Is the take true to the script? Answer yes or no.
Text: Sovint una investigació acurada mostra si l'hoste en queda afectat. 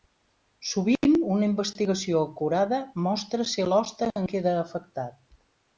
yes